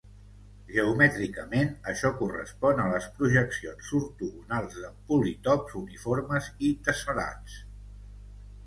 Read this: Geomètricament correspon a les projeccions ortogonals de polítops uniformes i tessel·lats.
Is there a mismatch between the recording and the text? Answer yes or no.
yes